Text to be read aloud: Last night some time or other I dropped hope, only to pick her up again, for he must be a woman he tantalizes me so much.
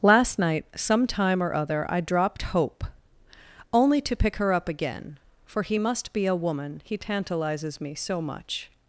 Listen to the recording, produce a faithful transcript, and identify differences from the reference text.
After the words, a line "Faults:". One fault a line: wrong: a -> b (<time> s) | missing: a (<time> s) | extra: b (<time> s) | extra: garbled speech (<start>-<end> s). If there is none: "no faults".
Last night some time or other I dropped hope, only to pick her up again, for he must be a woman he tantalizes me so much.
Faults:
no faults